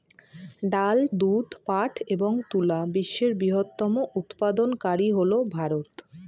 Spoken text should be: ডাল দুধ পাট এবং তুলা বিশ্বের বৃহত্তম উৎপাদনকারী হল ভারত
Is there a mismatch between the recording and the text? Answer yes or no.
no